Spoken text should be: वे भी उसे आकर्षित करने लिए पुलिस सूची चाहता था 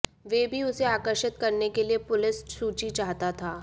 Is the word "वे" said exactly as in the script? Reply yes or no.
yes